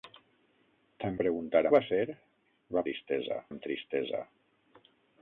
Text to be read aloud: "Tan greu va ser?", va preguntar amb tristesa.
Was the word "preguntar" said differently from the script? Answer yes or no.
yes